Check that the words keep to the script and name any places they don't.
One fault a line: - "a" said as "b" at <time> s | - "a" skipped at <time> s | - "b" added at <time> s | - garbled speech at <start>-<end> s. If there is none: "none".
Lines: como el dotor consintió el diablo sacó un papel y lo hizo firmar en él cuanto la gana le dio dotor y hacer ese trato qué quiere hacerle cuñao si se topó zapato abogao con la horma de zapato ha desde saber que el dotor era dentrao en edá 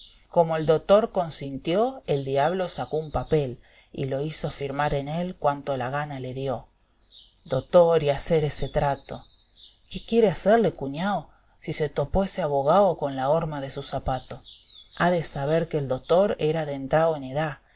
- "zapato" said as "ese" at 12.2 s
- "su" added at 13.7 s
- "desde" said as "de" at 15.1 s